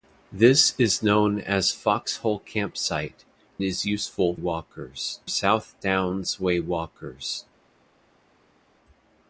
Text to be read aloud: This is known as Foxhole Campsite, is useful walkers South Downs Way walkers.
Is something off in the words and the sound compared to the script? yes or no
no